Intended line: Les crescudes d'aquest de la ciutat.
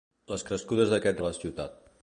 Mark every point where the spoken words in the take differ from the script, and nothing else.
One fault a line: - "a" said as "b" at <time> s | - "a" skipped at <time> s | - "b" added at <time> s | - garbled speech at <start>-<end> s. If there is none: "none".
none